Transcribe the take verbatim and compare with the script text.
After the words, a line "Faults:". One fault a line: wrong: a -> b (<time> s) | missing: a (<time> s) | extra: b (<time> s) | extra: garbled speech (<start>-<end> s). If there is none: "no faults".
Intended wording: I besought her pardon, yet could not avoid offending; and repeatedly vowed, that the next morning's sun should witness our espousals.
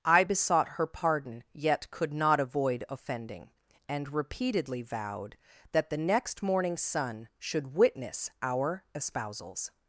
I besought her pardon, yet could not avoid offending; and repeatedly vowed, that the next morning's sun should witness our espousals.
Faults:
no faults